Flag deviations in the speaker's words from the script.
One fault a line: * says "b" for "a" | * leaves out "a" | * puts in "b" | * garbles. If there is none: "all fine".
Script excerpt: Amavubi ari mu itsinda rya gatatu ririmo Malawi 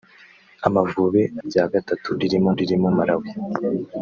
* leaves out "ari mu itsinda"
* puts in "ririmo"